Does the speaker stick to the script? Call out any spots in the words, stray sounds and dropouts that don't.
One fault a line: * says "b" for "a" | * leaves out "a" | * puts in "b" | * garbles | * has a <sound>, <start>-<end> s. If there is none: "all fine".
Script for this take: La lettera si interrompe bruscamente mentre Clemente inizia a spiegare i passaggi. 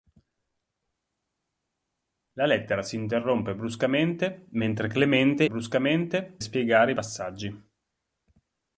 * says "bruscamente" for "inizia"